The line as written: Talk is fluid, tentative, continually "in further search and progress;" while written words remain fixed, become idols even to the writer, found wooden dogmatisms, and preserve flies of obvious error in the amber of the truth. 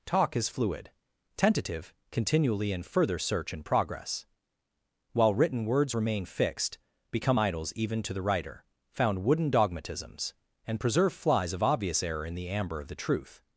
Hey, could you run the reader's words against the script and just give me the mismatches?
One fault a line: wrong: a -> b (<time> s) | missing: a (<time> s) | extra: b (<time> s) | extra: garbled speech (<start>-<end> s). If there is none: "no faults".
no faults